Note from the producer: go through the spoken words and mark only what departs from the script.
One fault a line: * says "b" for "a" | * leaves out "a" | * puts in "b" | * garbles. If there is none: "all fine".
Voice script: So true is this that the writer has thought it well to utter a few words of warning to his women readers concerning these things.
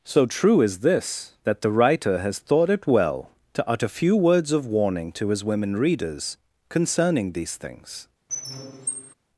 * leaves out "a"